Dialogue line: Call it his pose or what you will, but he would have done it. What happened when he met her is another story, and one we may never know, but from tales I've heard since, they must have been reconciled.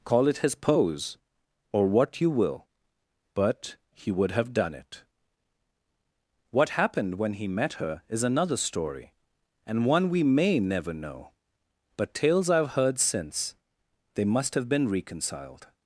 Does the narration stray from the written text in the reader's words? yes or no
yes